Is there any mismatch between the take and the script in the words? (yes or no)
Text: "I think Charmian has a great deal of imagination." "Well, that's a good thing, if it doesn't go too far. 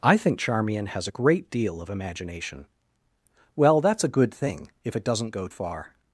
yes